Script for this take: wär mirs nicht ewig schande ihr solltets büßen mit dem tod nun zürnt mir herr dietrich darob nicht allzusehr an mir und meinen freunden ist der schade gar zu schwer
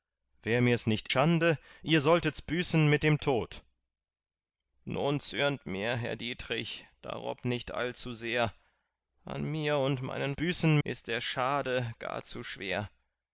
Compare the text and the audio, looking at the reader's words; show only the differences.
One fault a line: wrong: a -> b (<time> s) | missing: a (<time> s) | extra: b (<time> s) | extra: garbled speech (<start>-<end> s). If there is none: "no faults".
missing: ewig (1.1 s)
wrong: freunden -> büßen (10.3 s)